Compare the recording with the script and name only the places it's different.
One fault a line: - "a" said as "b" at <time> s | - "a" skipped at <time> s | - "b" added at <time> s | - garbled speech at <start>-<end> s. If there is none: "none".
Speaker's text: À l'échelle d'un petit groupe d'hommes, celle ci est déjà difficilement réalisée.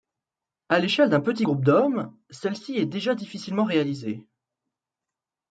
none